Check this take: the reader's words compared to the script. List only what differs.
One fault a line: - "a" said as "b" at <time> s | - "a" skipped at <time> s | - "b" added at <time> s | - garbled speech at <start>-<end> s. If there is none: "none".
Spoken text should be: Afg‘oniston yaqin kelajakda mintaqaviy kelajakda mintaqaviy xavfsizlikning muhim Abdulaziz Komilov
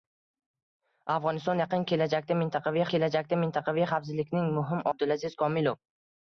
none